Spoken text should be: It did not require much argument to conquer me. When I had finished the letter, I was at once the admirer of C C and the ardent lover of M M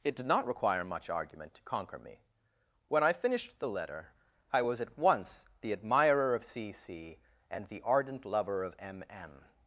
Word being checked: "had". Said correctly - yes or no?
no